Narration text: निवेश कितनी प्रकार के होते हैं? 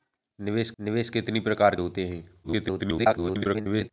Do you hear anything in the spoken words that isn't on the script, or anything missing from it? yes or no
yes